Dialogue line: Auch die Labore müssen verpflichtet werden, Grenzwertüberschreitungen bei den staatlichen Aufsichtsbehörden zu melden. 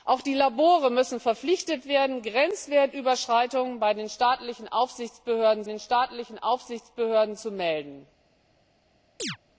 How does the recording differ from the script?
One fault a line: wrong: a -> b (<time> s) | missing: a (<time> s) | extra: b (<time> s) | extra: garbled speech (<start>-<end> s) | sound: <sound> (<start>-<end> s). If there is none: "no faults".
extra: den staatlichen Aufsichtsbehörden (5.6 s)
sound: chirp (9.2-9.4 s)